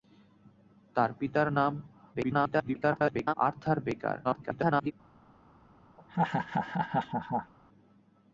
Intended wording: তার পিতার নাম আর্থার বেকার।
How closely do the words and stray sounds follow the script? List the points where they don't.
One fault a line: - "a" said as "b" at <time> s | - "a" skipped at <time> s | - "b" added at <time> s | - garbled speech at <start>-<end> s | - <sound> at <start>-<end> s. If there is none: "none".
- garbled speech at 2.1-3.3 s
- garbled speech at 4.2-4.9 s
- laugh at 6.0-7.5 s